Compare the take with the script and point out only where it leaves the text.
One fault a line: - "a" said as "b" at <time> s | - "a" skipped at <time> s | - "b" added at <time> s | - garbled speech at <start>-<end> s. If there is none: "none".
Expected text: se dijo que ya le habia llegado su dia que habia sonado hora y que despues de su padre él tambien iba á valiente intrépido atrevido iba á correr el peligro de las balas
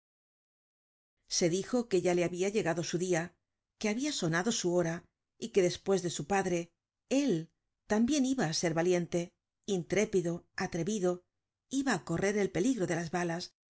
- "su" added at 4.5 s
- "ser" added at 8.6 s